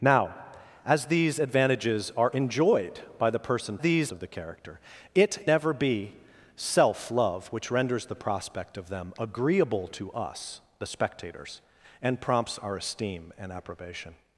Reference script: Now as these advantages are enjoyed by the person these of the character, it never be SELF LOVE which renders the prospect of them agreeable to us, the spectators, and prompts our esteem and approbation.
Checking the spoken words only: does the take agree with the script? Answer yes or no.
yes